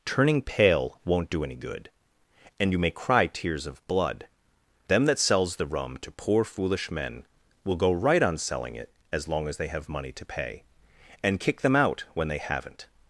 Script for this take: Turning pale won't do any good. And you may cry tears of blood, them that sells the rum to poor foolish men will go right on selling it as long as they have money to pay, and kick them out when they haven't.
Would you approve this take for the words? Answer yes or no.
yes